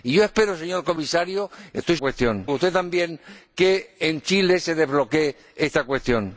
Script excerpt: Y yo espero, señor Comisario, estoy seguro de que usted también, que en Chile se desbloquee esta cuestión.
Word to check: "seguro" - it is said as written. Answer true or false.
false